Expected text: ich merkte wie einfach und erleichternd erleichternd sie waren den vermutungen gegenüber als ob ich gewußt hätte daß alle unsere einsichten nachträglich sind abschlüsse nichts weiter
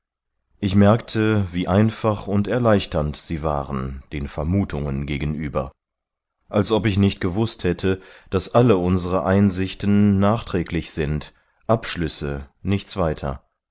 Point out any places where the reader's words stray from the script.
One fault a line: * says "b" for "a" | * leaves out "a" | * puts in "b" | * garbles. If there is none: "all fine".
* leaves out "erleichternd"
* puts in "nicht"